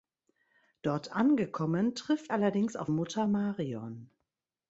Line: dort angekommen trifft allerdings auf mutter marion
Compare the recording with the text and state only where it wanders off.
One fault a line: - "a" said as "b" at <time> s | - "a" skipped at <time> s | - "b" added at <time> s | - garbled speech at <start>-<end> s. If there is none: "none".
none